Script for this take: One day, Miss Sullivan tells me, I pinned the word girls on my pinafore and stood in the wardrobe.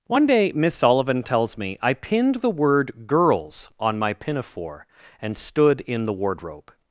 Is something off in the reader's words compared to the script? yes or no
no